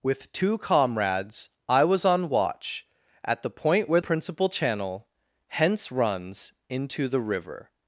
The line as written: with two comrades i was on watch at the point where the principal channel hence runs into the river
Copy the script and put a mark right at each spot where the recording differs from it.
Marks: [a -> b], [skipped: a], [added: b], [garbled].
with two comrades i was on watch at the point where [skipped: the] principal channel hence runs into the river